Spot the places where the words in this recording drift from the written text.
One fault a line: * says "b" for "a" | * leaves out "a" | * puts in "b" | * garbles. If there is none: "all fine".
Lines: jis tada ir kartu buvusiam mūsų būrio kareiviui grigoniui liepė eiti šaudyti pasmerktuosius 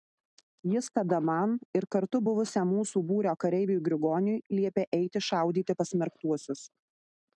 * puts in "man"